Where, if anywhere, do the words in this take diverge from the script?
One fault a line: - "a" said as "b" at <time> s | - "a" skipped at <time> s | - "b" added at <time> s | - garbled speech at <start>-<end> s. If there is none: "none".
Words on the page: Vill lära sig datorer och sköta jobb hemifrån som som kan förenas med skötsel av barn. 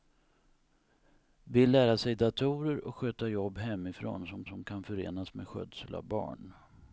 none